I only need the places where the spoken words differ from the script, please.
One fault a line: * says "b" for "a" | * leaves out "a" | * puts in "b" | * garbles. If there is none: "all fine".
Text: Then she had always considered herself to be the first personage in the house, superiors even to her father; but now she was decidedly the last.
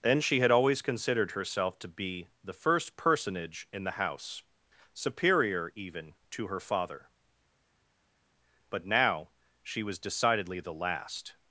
* says "superior" for "superiors"